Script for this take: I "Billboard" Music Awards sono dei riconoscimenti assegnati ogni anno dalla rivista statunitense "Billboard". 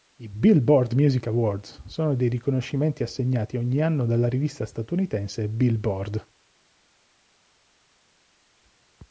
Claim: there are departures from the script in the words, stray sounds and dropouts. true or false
false